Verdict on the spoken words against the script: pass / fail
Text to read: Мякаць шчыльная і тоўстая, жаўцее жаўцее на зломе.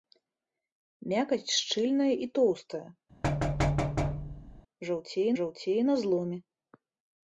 pass